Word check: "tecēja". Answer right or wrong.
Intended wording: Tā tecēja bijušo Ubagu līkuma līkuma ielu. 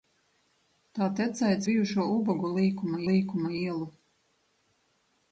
right